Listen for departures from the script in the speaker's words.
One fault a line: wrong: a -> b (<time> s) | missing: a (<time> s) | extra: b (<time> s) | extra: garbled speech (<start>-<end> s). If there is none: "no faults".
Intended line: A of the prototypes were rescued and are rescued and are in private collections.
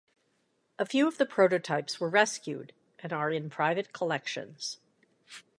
extra: few (0.8 s)
missing: rescued and are (3.3 s)